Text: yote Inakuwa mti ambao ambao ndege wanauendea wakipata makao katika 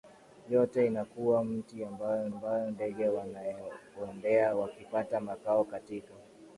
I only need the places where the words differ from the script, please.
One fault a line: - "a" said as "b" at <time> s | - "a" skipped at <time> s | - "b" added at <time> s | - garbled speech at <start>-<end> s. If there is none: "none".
none